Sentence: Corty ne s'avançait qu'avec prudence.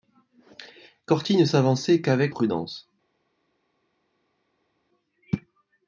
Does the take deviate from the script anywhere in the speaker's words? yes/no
no